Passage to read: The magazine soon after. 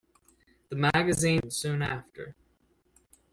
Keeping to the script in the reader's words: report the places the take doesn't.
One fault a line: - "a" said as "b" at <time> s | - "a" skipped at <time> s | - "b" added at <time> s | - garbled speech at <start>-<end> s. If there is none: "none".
none